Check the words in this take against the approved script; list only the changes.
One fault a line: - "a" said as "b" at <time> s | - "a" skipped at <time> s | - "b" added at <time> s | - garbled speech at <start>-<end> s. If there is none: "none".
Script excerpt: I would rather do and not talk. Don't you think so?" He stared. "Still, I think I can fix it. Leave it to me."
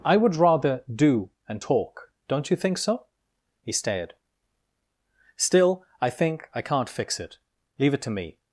- "not" skipped at 1.6 s
- "can" said as "can't" at 6.6 s